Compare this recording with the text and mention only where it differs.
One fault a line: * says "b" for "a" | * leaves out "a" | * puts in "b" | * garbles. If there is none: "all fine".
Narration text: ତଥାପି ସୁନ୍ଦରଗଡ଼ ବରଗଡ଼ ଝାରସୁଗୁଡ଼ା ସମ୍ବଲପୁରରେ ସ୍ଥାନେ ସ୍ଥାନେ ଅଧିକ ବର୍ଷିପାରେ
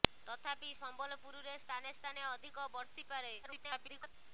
* leaves out "ସୁନ୍ଦରଗଡ଼ ବରଗଡ଼ ଝାରସୁଗୁଡ଼ା"
* garbles